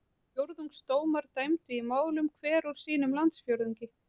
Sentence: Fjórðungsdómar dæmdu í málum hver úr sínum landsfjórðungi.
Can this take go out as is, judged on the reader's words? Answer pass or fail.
pass